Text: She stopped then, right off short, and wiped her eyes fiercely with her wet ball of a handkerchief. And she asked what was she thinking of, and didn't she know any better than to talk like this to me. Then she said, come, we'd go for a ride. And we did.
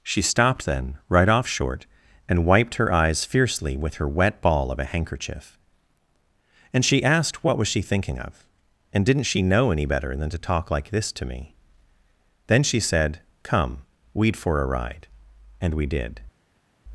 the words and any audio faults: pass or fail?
fail